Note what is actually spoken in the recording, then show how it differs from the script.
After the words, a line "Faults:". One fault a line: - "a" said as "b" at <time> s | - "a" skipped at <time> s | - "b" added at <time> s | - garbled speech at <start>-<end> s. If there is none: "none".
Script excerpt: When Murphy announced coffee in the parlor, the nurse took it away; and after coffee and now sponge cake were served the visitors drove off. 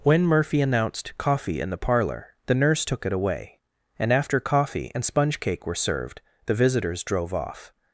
When Murphy announced coffee in the parlor, the nurse took it away; and after coffee and sponge cake were served the visitors drove off.
Faults:
- "now" skipped at 5.0 s